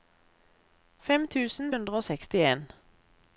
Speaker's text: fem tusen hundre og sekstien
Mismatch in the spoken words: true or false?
false